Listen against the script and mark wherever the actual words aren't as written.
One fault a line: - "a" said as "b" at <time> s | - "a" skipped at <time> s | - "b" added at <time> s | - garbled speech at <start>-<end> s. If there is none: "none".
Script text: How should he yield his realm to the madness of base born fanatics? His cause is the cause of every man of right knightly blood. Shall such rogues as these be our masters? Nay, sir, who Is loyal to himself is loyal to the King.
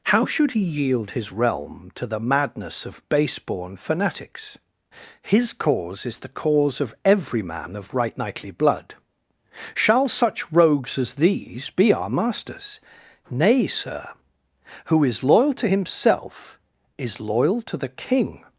none